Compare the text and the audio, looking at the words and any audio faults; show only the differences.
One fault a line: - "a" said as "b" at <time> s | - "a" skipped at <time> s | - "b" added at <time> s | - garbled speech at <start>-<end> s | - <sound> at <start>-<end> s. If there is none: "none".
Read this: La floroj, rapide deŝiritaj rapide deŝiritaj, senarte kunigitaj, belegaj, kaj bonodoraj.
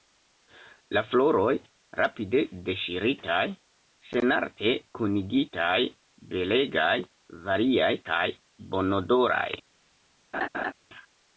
- "rapide deŝiritaj" skipped at 3.5 s
- "variaj" added at 7.5 s
- laugh at 10.3-10.7 s